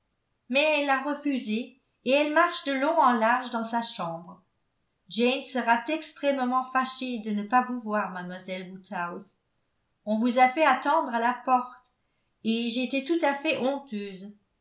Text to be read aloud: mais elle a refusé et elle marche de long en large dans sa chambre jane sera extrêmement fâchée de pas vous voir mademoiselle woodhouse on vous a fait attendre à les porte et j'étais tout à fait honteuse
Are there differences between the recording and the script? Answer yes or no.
yes